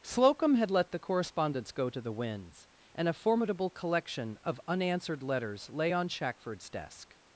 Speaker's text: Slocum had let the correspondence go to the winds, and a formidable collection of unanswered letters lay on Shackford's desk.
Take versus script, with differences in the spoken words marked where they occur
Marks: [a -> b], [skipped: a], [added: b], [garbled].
Slocum had let the correspondence go to the winds, and a formidable collection of unanswered letters lay on Shackford's desk.